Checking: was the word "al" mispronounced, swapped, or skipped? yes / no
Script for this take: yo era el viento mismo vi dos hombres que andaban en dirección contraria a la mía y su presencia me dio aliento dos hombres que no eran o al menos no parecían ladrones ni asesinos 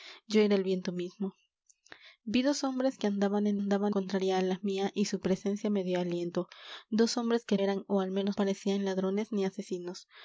no